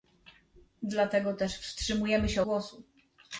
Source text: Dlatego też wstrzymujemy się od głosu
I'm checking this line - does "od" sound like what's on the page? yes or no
no